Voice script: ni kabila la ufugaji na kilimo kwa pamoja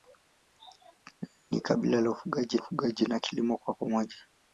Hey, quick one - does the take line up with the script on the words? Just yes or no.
no